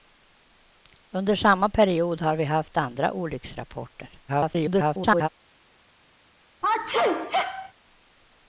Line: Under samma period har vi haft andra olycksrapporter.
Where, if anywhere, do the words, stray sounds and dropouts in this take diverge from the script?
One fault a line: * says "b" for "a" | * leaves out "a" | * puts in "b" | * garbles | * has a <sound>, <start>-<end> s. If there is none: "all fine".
* garbles
* has a sneeze, 6.6-7.7 s